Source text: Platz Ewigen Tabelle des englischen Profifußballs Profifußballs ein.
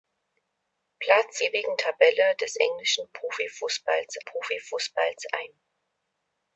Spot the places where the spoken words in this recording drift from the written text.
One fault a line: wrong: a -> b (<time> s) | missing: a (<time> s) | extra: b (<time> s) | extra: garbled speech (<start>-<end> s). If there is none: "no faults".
no faults